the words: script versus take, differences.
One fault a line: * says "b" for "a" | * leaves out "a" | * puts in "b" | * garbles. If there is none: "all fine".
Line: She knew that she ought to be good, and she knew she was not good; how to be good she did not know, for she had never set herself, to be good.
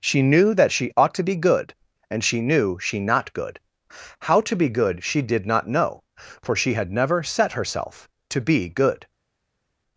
* leaves out "was"